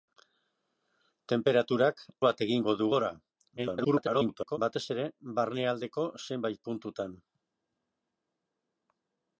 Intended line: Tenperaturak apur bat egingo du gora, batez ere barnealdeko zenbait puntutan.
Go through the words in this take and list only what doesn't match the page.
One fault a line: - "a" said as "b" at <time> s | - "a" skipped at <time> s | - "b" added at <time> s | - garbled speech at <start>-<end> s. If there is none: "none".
- "apur" skipped at 2.0 s
- garbled speech at 3.6-4.6 s